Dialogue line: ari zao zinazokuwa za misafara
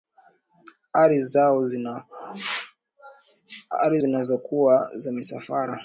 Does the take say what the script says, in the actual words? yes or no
no